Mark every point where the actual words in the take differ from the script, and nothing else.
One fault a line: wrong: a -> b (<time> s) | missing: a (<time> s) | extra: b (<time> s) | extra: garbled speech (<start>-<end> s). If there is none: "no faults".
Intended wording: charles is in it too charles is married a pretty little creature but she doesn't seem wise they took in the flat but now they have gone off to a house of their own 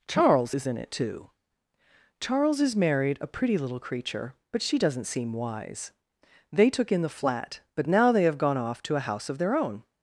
no faults